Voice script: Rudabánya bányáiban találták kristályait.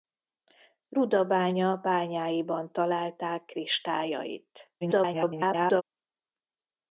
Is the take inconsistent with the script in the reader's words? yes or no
yes